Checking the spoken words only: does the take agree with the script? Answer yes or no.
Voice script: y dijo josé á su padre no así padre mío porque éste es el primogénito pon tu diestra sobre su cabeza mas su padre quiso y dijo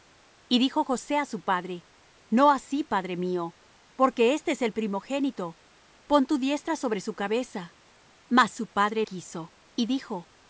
yes